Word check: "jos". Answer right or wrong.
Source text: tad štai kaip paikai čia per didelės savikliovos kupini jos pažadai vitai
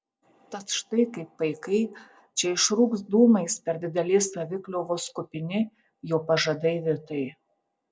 wrong